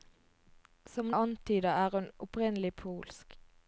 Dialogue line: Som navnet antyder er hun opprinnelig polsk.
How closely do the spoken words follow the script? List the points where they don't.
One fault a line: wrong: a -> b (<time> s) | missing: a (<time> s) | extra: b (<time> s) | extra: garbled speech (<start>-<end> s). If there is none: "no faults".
missing: navnet (1.1 s)